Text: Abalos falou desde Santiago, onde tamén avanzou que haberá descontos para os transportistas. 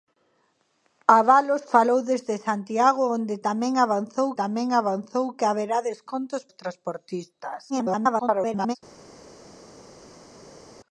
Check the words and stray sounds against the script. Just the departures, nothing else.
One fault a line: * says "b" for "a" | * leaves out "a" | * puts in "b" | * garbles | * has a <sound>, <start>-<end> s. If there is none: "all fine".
* puts in "tamén avanzou"
* leaves out "para"
* garbles